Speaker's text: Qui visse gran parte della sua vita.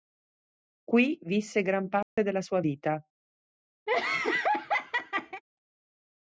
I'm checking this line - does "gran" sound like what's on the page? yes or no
yes